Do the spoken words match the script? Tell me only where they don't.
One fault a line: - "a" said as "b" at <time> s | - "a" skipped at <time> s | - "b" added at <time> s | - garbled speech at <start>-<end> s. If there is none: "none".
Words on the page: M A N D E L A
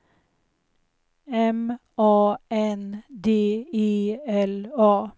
none